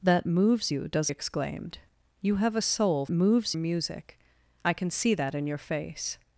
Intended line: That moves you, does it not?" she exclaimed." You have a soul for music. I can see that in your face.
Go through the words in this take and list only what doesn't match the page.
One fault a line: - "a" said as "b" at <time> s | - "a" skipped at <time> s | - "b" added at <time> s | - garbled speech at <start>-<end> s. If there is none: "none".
- "it not she" skipped at 1.1 s
- "for" said as "moves" at 3.1 s